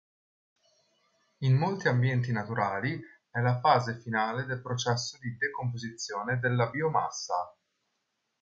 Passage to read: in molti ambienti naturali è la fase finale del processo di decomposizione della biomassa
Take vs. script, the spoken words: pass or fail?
pass